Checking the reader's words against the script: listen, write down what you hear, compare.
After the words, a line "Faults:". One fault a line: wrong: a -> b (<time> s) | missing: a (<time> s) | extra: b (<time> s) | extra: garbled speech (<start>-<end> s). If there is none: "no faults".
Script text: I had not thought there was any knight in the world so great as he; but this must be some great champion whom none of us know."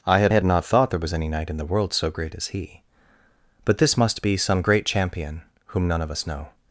I had had not thought there was any knight in the world so great as he; but this must be some great champion whom none of us know."
Faults:
extra: had (0.3 s)